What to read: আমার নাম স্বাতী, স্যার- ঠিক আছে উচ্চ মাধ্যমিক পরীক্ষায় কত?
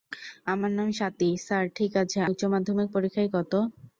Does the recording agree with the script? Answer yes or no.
yes